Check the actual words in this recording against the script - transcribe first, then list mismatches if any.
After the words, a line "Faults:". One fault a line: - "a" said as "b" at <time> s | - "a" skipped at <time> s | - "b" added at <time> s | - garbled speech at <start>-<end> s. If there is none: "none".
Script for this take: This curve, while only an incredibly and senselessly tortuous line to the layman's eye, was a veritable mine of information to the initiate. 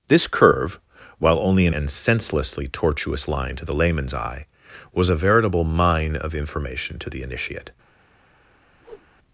This curve, while only an and senselessly tortuous line to the layman's eye, was a veritable mine of information to the initiate.
Faults:
- "incredibly" skipped at 1.8 s